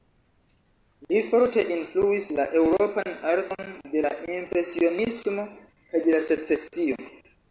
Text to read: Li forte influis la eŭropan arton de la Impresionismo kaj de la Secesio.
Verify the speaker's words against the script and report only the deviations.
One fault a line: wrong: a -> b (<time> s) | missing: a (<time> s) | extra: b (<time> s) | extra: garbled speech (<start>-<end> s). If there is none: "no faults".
no faults